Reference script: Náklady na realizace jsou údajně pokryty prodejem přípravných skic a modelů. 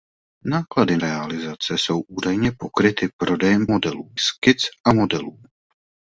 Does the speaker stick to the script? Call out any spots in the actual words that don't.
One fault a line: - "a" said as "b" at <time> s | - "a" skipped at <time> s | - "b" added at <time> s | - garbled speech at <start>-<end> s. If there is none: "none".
- "na" skipped at 1.0 s
- "přípravných" said as "modelů" at 3.7 s